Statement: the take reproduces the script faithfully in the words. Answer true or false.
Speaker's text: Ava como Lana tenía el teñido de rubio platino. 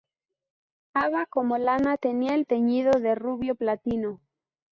true